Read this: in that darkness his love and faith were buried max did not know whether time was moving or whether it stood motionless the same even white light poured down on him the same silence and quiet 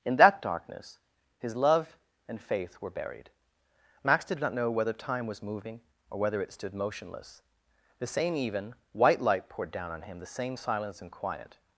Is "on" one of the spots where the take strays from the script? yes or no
no